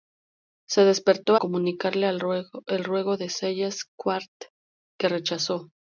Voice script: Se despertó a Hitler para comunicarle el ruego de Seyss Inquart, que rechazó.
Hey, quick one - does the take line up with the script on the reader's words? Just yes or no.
no